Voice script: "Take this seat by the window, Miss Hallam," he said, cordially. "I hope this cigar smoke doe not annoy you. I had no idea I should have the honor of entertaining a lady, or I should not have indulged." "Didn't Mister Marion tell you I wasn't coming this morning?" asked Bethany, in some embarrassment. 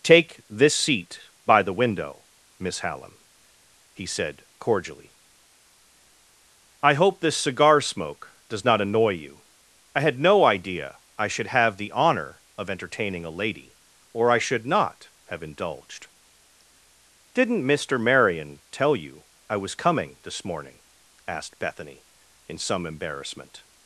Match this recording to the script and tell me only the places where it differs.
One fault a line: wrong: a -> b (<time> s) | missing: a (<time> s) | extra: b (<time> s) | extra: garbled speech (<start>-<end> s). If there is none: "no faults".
wrong: doe -> does (8.5 s)
wrong: wasn't -> was (19.6 s)